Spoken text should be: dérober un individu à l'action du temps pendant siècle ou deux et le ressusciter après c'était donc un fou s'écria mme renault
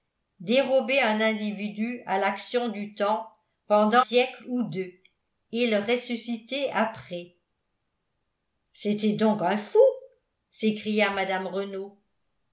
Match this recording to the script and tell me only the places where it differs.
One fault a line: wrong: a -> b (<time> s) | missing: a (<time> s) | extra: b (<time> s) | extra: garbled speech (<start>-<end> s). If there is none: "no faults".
no faults